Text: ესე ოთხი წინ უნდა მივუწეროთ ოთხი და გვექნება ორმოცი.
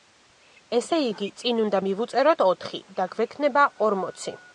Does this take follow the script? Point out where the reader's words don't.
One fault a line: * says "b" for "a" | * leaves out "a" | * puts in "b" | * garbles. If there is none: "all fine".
* says "იგი" for "ოთხი"